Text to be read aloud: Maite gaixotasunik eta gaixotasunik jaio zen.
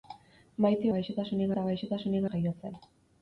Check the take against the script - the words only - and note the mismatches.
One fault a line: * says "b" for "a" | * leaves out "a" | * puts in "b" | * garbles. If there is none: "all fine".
all fine